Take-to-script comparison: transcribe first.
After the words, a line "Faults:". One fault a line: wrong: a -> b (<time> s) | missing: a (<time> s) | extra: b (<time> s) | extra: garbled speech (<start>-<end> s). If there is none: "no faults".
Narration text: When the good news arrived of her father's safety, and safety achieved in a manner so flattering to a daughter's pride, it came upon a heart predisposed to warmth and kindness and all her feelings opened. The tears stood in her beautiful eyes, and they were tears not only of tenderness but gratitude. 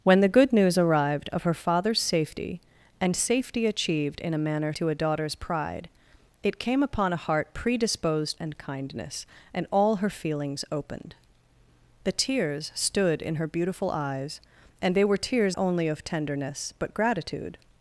When the good news arrived of her father's safety, and safety achieved in a manner to a daughter's pride, it came upon a heart predisposed and kindness and all her feelings opened. The tears stood in her beautiful eyes, and they were tears only of tenderness but gratitude.
Faults:
missing: so flattering (4.7 s)
missing: to warmth (8.4 s)
missing: not (15.6 s)